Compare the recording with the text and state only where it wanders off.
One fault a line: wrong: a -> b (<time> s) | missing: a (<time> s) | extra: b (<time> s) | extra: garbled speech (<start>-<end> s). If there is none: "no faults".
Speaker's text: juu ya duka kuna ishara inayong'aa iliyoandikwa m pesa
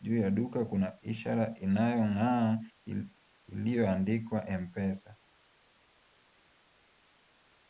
no faults